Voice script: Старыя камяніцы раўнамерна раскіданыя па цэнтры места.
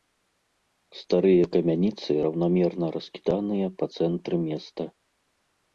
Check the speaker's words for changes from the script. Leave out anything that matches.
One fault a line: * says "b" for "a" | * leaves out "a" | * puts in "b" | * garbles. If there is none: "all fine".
all fine